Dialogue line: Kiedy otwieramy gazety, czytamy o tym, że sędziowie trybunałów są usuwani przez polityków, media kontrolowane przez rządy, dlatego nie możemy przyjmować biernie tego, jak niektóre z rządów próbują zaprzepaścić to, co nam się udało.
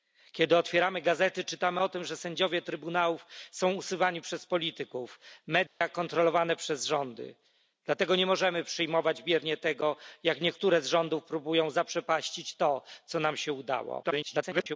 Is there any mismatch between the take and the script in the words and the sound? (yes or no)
yes